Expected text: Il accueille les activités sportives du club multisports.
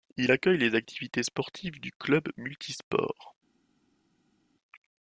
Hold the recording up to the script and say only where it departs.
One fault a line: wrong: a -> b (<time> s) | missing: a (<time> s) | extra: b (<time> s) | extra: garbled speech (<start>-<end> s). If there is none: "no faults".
no faults